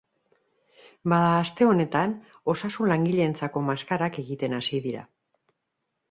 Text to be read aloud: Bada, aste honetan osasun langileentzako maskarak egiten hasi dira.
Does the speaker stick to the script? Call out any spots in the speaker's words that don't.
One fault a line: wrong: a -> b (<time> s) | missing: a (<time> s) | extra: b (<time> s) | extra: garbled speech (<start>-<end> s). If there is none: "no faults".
no faults